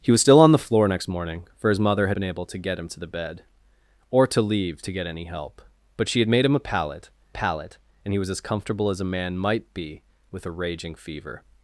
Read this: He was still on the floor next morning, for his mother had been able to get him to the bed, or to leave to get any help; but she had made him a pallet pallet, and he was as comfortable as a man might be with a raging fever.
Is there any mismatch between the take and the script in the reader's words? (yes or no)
no